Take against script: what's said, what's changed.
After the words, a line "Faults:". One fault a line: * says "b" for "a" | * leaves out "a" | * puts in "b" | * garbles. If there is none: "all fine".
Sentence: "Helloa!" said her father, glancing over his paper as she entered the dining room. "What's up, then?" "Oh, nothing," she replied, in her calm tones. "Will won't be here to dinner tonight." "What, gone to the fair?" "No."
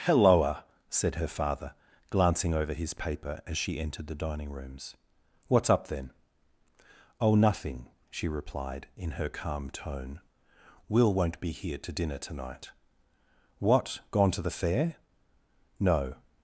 "Helloa!" said her father, glancing over his paper as she entered the dining rooms. "What's up, then?" "Oh, nothing," she replied, in her calm tone. "Will won't be here to dinner tonight." "What, gone to the fair?" "No."
Faults:
* says "rooms" for "room"
* says "tone" for "tones"